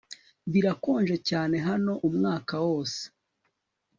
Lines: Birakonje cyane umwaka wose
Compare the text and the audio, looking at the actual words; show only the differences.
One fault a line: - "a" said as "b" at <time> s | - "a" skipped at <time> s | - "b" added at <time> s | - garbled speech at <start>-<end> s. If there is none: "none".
- "hano" added at 1.7 s